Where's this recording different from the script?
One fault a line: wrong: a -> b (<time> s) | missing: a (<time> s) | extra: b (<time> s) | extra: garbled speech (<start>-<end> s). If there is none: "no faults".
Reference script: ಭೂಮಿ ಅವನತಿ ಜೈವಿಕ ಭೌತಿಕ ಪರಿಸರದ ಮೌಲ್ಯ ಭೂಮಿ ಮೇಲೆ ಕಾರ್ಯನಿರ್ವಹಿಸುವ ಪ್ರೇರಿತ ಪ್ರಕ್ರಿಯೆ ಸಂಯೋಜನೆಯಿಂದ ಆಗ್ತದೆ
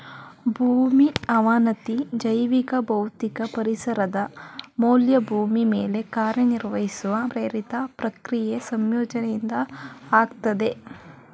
no faults